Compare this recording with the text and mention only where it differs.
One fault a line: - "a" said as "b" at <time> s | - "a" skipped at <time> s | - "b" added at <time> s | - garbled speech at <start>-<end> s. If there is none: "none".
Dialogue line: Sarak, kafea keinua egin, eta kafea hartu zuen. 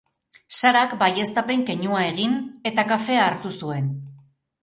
- "kafea" said as "baieztapen" at 1.0 s